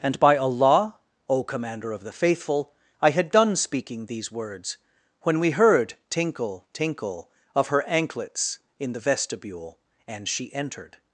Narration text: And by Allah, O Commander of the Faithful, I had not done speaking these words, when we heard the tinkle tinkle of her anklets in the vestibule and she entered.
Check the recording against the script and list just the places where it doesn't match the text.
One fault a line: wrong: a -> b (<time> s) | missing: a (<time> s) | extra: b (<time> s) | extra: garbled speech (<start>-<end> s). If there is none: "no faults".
missing: not (3.3 s)
missing: the (5.9 s)